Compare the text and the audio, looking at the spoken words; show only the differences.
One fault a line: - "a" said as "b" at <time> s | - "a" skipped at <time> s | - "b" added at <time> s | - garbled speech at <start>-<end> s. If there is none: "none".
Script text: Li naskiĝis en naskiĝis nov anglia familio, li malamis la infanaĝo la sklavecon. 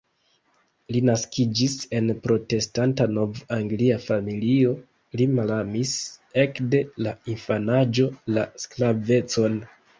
- "naskiĝis" said as "protestanta" at 2.2 s
- "ekde" added at 6.5 s